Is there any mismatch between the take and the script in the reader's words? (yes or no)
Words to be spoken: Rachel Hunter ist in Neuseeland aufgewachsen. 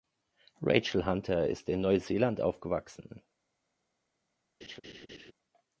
no